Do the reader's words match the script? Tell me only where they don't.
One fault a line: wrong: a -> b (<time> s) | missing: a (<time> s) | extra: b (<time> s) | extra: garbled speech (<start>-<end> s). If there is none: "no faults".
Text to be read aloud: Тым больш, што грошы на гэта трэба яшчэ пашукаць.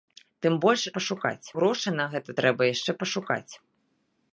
wrong: што -> пашукаць (1.0 s)